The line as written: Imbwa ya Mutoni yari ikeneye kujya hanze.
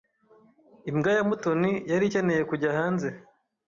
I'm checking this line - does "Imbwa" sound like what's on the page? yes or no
yes